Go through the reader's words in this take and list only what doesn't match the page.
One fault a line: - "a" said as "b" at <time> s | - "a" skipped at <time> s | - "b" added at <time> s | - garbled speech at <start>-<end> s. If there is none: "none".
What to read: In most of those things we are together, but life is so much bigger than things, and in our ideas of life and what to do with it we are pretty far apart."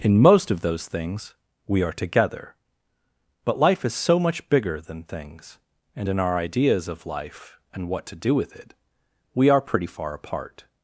none